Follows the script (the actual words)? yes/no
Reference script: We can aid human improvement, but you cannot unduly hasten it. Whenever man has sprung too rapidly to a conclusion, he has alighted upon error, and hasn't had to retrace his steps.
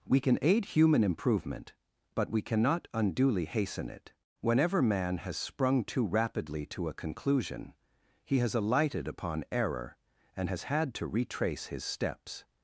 no